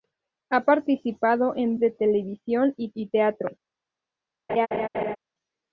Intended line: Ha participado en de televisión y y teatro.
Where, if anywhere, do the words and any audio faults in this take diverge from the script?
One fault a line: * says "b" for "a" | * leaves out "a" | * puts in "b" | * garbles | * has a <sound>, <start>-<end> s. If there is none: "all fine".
* has a laugh, 4.5-5.2 s